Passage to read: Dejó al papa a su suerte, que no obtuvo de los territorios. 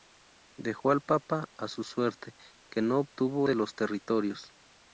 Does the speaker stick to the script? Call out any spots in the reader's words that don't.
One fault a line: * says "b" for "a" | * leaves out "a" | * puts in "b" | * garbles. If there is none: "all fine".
all fine